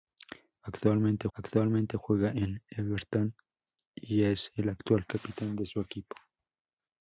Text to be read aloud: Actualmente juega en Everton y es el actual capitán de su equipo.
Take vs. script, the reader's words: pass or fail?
fail